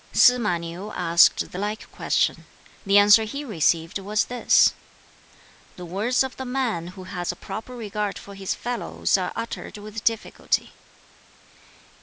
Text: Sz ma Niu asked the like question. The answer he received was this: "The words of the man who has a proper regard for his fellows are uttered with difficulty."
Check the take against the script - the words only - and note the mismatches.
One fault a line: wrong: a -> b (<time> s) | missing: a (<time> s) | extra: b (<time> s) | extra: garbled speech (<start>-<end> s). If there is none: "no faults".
no faults